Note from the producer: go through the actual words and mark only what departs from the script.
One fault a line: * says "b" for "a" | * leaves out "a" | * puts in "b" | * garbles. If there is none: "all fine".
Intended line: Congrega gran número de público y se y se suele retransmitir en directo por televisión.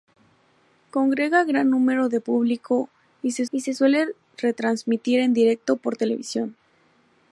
all fine